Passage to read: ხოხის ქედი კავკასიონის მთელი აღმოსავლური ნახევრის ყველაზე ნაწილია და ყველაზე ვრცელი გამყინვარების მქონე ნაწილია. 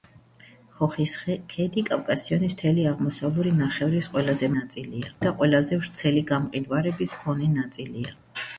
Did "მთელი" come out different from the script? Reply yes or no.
no